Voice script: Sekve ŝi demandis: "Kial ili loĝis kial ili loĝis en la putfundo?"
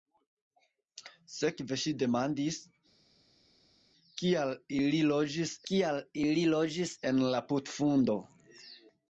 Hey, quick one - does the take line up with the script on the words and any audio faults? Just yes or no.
yes